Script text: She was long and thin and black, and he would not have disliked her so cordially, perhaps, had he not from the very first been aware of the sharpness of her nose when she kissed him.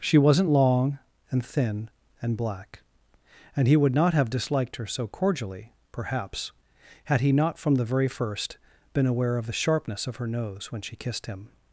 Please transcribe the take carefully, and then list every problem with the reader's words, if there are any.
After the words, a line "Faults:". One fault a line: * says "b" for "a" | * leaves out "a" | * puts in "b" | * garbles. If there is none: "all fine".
She wasn't long and thin and black, and he would not have disliked her so cordially, perhaps, had he not from the very first been aware of the sharpness of her nose when she kissed him.
Faults:
* says "wasn't" for "was"